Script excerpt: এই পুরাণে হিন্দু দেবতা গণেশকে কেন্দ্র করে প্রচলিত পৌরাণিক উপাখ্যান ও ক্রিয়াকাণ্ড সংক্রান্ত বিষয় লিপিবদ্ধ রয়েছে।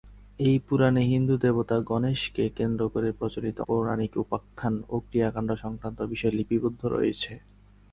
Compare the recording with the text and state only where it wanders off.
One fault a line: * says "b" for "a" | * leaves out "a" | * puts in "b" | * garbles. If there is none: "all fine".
all fine